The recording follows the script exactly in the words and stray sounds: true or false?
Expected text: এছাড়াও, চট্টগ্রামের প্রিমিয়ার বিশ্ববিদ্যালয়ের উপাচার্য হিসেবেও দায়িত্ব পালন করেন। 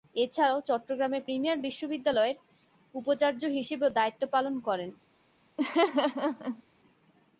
false